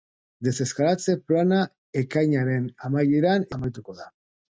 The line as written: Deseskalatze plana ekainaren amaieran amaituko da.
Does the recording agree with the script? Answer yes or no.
yes